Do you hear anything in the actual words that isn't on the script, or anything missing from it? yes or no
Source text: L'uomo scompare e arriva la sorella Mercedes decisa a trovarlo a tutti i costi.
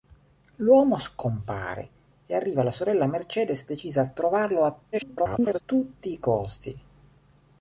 yes